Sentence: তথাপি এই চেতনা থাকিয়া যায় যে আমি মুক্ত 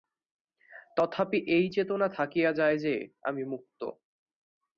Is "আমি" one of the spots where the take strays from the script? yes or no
no